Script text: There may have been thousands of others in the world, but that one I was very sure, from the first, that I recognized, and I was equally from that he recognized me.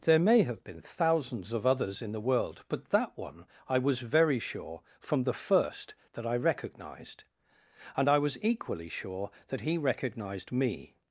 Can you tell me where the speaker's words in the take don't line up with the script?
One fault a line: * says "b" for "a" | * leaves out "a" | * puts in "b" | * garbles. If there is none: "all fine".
* says "sure" for "from"